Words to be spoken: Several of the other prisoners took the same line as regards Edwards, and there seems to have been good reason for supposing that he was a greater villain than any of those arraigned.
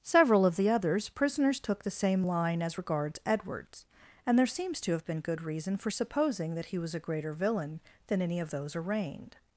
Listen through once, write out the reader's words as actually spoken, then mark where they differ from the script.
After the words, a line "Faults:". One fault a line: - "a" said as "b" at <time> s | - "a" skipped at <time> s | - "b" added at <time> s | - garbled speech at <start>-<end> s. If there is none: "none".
Several of the others prisoners took the same line as regards Edwards, and there seems to have been good reason for supposing that he was a greater villain than any of those arraigned.
Faults:
- "other" said as "others" at 0.7 s